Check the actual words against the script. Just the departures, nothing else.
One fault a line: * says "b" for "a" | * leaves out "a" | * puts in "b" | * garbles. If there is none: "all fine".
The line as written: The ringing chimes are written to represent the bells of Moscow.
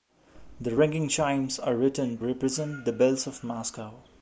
* leaves out "to"